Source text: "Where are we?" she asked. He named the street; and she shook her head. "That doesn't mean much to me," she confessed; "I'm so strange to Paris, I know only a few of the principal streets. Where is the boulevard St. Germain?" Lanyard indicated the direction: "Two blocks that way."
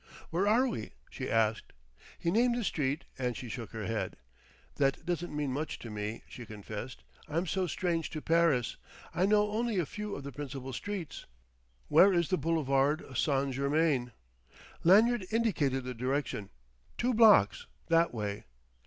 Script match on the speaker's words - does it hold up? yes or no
yes